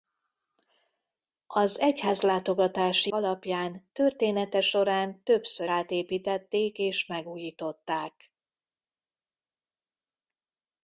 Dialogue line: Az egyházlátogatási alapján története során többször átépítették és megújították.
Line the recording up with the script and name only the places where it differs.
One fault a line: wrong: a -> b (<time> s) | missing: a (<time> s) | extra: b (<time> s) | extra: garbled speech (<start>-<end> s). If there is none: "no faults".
no faults